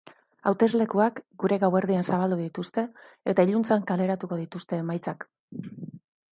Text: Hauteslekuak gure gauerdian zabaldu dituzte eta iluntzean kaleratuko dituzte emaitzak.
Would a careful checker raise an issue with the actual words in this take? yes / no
no